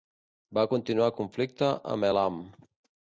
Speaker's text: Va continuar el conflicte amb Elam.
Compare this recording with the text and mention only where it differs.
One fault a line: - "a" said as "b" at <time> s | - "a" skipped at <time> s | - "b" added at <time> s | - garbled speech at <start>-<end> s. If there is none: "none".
none